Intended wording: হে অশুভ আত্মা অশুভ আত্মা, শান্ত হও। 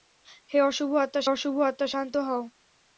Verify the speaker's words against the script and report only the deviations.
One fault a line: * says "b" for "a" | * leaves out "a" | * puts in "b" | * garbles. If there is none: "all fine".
all fine